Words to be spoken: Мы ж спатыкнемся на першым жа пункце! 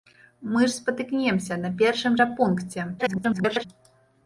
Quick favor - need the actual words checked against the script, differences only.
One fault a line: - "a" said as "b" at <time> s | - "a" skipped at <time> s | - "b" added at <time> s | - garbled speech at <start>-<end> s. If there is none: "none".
- garbled speech at 3.0-3.7 s